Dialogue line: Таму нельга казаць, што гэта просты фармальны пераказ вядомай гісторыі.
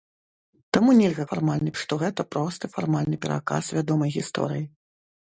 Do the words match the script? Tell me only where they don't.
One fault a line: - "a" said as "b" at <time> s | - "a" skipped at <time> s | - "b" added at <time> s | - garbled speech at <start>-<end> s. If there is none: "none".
- "казаць" said as "фармальны" at 1.3 s